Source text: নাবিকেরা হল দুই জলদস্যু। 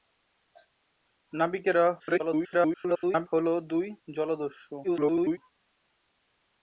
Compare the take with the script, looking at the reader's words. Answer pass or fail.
fail